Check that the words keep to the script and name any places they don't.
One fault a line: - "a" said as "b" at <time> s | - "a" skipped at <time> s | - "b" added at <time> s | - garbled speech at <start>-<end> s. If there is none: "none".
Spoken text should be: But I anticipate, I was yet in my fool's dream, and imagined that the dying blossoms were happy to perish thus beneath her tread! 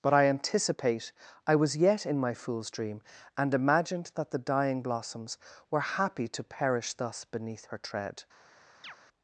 none